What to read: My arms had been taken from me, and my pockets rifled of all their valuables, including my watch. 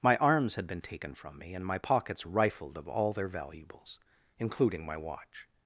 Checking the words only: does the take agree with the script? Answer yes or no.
yes